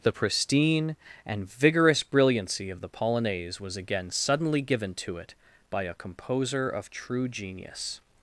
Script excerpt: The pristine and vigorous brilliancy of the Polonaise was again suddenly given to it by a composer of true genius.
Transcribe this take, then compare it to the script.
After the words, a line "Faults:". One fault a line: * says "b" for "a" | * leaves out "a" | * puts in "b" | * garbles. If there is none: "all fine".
The pristine and vigorous brilliancy of the Polonaise was again suddenly given to it by a composer of true genius.
Faults:
all fine